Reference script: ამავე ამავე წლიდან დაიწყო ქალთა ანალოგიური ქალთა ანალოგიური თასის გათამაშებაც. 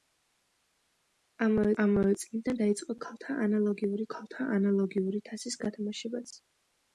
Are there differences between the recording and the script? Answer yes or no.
no